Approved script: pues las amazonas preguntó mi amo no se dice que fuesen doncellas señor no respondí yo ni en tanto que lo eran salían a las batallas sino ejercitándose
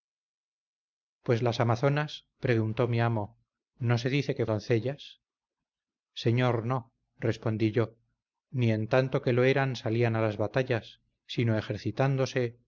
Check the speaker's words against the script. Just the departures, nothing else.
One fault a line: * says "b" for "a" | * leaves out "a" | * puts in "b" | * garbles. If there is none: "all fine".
* leaves out "fuesen"